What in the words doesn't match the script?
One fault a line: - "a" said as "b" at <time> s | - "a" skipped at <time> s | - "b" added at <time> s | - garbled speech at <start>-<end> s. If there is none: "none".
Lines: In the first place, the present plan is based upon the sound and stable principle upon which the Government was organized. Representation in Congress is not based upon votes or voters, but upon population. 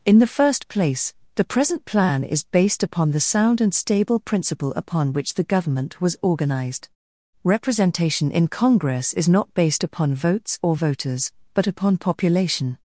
none